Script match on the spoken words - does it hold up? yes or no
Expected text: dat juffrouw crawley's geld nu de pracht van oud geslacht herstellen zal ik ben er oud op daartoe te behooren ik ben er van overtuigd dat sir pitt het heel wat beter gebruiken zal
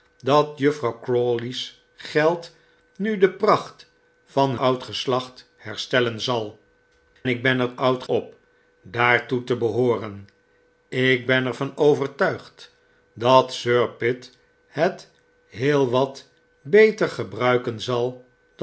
yes